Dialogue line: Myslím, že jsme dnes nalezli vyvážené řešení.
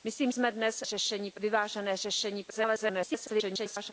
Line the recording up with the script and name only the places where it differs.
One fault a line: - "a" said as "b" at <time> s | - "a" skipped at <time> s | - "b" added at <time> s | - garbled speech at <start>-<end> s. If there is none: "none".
- "že" skipped at 0.3 s
- "nalezli" said as "řešení" at 0.8 s
- garbled speech at 2.5-3.9 s